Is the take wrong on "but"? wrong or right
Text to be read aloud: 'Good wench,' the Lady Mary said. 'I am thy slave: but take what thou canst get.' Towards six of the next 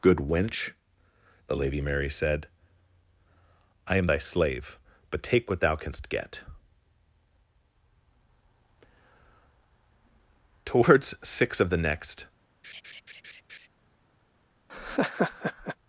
right